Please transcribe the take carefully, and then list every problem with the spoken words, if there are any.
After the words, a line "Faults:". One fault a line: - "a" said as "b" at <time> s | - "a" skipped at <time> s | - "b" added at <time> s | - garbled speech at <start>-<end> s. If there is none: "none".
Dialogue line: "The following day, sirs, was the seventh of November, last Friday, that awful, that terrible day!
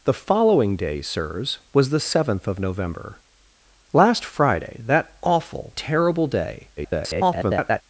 "The following day, sirs, was the seventh of November, last Friday, that awful, terrible day! [garbled]
Faults:
- "that" skipped at 5.8 s
- garbled speech at 6.8-7.8 s